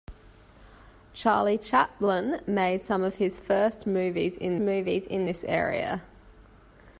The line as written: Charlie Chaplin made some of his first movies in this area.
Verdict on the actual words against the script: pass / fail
fail